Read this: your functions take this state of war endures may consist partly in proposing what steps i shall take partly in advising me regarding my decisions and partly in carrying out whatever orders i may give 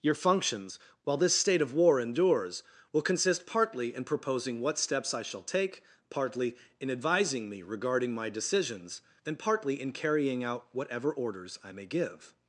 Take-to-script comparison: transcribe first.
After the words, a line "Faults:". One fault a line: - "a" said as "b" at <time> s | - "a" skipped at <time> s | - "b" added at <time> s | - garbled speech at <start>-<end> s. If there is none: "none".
your functions while this state of war endures will consist partly in proposing what steps i shall take partly in advising me regarding my decisions and partly in carrying out whatever orders i may give
Faults:
- "take" said as "while" at 1.0 s
- "may" said as "will" at 2.9 s